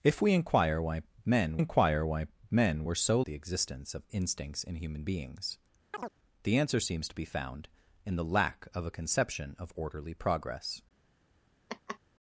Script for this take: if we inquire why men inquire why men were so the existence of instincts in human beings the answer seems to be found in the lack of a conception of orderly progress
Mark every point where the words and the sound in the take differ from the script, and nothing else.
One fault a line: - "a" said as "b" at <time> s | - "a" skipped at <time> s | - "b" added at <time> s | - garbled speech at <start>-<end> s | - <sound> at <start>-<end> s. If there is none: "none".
- chirp at 5.9-6.1 s
- laugh at 11.7-12.0 s